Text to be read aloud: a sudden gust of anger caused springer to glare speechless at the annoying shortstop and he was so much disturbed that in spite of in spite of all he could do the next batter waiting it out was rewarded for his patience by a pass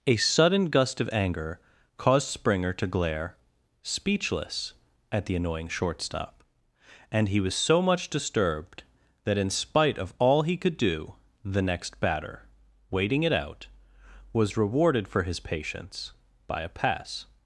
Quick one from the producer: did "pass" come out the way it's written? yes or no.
yes